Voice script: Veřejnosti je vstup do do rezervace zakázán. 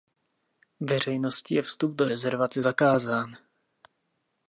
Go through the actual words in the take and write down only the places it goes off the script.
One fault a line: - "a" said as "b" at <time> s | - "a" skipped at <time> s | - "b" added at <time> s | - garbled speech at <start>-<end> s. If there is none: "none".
- "do" skipped at 2.1 s